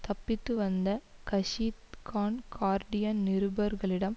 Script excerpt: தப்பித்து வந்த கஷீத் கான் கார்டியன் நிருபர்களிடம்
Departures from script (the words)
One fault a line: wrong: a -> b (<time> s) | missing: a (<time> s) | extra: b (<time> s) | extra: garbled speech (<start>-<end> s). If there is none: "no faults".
no faults